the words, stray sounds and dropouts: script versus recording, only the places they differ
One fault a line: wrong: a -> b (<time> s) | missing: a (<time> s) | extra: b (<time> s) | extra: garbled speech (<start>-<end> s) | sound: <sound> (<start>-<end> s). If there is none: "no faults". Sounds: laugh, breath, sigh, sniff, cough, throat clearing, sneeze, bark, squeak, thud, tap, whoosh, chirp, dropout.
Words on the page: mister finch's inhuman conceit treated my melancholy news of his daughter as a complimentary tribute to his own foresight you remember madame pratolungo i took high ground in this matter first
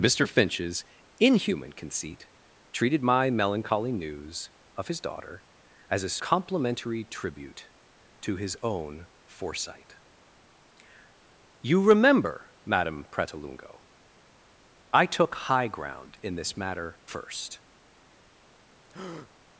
sound: breath (18.9-19.3 s)